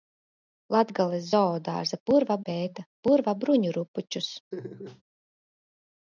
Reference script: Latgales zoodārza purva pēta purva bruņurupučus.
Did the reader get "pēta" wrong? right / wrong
right